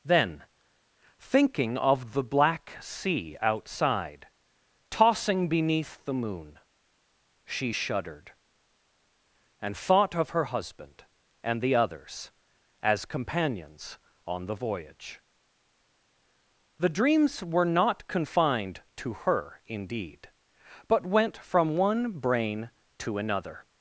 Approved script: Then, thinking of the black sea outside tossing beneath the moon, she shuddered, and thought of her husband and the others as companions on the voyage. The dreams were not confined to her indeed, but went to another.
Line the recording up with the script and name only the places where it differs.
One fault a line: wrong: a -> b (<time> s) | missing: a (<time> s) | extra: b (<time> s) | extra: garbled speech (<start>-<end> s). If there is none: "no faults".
extra: from one brain (21.4 s)